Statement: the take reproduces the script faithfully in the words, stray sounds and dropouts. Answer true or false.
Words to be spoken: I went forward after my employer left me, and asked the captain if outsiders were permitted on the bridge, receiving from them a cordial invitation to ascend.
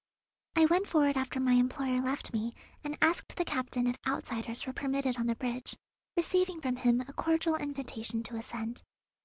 false